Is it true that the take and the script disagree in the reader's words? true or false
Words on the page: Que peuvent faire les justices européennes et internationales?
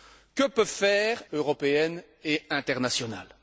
true